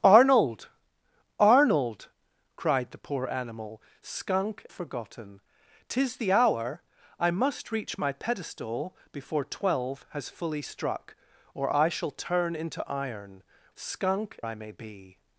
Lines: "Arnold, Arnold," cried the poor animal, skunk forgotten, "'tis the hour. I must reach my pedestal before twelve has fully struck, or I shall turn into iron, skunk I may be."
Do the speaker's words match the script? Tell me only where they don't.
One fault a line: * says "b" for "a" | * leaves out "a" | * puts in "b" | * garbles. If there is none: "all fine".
all fine